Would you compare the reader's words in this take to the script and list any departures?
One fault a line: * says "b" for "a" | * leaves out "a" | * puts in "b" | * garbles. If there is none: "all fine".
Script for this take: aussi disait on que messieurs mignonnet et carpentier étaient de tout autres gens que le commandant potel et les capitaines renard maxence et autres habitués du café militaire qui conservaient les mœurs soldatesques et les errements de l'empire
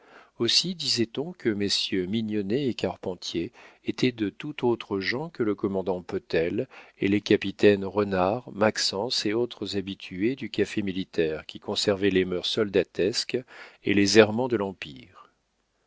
all fine